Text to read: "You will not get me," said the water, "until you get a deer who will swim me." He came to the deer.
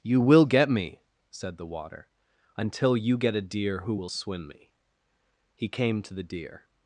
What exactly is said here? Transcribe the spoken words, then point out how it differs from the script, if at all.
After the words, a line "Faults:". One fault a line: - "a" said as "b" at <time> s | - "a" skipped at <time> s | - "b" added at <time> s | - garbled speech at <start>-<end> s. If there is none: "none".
"You will get me," said the water, "until you get a deer who will swim me." He came to the deer.
Faults:
- "not" skipped at 0.5 s